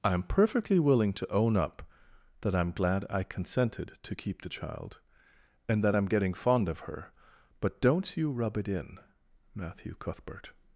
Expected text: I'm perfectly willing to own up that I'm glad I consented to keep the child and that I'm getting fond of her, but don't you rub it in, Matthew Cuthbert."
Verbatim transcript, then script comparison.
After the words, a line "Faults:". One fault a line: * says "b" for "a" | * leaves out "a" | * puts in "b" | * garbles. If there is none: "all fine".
I'm perfectly willing to own up that I'm glad I consented to keep the child and that I'm getting fond of her, but don't you rub it in, Matthew Cuthbert."
Faults:
all fine